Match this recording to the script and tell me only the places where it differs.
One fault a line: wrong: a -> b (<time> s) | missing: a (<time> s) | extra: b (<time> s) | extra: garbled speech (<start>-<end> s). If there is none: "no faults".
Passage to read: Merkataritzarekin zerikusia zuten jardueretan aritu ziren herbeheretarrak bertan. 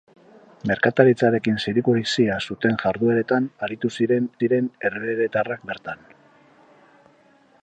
extra: ziren (4.4 s)